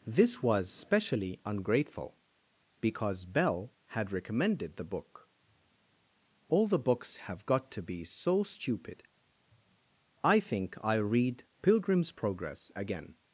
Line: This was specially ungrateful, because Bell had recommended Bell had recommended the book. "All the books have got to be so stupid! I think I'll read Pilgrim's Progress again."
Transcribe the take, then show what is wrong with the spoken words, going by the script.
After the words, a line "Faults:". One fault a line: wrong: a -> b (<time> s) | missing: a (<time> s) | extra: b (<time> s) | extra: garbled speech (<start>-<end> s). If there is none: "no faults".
This was specially ungrateful, because Bell had recommended the book. "All the books have got to be so stupid! I think I'll read Pilgrim's Progress again."
Faults:
missing: Bell had recommended (4.8 s)